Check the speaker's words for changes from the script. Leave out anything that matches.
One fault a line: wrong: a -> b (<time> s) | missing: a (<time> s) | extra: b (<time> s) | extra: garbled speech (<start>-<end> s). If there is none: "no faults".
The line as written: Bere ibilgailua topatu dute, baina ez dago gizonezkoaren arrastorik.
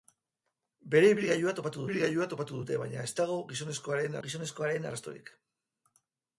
extra: ibilgailua topatu (1.9 s)
extra: gizonezkoaren (4.3 s)